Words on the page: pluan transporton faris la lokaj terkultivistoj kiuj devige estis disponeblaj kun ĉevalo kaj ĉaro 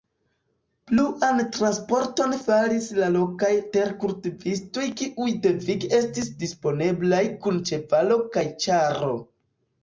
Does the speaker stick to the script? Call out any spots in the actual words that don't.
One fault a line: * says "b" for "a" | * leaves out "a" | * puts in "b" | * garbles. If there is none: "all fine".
all fine